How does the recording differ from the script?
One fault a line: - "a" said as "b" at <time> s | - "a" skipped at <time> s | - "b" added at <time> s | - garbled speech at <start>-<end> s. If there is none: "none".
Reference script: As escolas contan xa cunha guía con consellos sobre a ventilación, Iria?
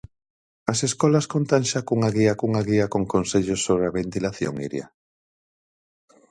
- "cunha guía" added at 2.4 s